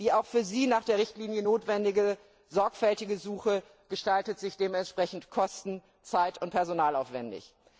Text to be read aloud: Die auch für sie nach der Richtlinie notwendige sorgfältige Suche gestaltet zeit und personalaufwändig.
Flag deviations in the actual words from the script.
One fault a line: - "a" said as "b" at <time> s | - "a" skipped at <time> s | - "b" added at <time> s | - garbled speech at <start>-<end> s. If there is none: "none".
- "sich dementsprechend kosten" added at 4.4 s